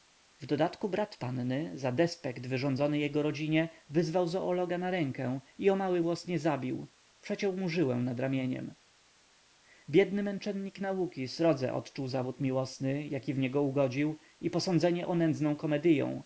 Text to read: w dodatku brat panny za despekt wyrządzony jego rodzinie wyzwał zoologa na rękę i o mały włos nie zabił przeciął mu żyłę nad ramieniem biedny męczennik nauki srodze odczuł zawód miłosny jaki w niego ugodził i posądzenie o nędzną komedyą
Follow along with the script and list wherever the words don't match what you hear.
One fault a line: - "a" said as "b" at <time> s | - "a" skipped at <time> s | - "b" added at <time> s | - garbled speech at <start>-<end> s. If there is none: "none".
none